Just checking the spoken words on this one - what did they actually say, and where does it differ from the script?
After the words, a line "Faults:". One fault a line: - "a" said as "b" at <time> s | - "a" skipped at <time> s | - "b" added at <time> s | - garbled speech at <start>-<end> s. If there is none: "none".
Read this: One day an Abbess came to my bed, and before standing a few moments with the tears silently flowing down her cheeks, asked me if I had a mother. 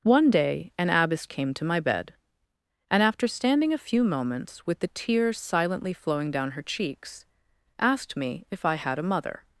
One day an Abbess came to my bed, and after standing a few moments with the tears silently flowing down her cheeks, asked me if I had a mother.
Faults:
- "before" said as "after" at 3.0 s